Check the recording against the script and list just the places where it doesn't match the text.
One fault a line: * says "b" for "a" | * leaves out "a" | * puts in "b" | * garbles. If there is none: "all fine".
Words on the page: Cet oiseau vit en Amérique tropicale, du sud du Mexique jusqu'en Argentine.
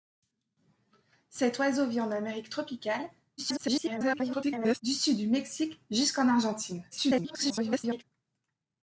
* garbles
* garbles